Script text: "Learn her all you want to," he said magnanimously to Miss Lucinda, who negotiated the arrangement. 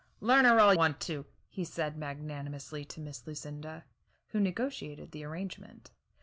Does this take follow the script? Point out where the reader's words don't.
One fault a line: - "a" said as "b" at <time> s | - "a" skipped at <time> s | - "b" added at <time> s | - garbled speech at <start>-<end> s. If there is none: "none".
- "you" skipped at 0.7 s